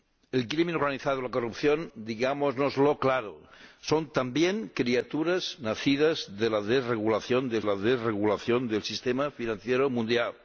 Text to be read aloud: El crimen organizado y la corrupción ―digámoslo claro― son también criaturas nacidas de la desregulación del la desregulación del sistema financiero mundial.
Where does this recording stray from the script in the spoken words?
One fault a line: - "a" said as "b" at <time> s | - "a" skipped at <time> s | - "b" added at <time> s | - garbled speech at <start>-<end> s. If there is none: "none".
none